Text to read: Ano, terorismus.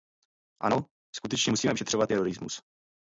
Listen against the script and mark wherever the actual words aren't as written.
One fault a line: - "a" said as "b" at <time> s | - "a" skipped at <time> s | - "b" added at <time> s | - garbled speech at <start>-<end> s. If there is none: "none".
- "skutečně musíme vyšetřovat" added at 1.1 s